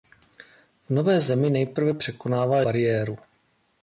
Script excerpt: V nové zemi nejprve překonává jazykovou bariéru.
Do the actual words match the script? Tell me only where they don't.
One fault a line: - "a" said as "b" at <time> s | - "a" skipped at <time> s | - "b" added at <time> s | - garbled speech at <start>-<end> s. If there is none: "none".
- "jazykovou" skipped at 2.6 s